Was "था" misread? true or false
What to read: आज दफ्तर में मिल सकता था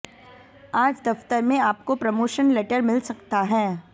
true